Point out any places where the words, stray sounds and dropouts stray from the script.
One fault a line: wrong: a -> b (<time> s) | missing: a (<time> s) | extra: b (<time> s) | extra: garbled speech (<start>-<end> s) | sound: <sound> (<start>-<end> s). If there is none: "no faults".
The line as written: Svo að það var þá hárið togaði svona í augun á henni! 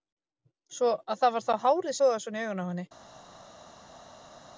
no faults